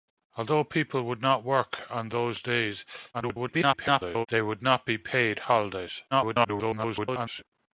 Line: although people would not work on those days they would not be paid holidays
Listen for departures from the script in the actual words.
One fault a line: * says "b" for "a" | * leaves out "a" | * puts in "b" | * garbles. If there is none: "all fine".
* garbles
* garbles